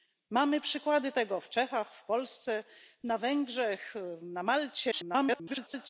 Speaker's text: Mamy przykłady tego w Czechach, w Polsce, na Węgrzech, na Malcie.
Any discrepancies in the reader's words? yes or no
yes